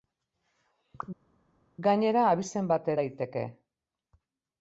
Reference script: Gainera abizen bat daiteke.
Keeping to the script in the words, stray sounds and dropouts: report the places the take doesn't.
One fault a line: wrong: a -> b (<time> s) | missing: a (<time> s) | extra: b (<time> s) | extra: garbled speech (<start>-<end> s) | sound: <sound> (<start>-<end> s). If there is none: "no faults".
no faults